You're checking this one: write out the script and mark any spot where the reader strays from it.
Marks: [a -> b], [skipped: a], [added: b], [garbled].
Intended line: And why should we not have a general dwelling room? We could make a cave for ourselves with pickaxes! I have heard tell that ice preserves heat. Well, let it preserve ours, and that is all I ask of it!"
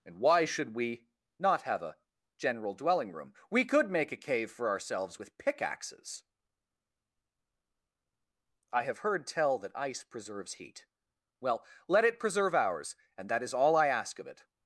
And why should we not have a general dwelling room? We could make a cave for ourselves with pickaxes! I have heard tell that ice preserves heat. Well, let it preserve ours, and that is all I ask of it!"